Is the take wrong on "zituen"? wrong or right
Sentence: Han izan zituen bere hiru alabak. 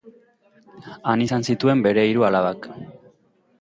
right